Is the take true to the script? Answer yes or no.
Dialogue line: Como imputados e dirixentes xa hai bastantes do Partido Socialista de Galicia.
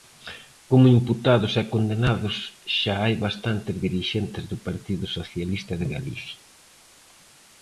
no